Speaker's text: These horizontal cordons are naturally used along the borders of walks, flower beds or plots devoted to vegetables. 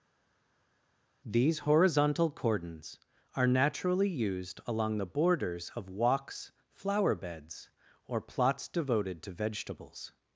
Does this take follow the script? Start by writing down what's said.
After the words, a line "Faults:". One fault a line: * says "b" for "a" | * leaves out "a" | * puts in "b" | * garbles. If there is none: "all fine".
These horizontal cordons are naturally used along the borders of walks, flower beds or plots devoted to vegetables.
Faults:
all fine